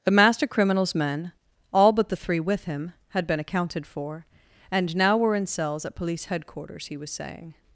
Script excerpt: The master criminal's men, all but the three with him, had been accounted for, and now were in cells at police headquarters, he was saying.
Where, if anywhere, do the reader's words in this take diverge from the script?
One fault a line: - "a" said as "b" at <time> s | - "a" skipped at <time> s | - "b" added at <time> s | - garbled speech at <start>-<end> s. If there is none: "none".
none